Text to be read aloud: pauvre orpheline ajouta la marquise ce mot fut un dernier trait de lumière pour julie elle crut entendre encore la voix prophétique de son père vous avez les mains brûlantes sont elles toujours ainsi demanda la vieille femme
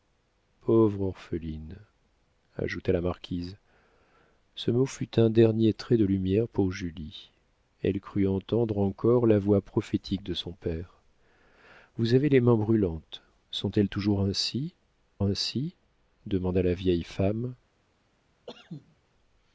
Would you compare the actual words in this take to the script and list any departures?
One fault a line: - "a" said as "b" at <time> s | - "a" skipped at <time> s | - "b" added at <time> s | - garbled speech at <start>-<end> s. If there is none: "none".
- "ainsi" added at 15.2 s